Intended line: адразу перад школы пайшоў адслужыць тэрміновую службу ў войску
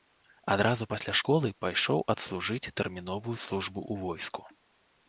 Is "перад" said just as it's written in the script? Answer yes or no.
no